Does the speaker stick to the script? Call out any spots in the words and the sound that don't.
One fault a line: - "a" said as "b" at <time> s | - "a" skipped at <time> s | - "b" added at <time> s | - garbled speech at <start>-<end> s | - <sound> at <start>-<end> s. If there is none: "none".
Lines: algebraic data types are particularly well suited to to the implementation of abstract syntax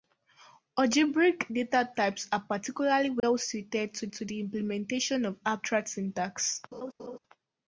- dropout at 3.2-3.2 s
- laugh at 6.7-7.2 s